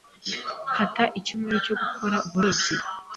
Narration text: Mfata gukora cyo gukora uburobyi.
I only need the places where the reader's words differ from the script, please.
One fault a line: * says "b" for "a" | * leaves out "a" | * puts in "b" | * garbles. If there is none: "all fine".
* says "icyumweru" for "gukora"